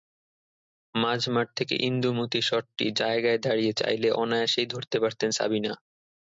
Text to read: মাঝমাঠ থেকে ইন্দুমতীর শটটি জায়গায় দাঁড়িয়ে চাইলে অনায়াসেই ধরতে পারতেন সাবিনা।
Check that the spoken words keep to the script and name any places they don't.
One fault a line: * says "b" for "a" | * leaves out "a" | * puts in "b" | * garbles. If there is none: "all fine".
all fine